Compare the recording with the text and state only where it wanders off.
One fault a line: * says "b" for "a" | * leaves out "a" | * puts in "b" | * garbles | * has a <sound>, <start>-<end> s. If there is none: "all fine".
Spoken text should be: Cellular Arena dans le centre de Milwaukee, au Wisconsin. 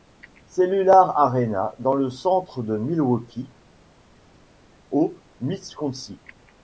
all fine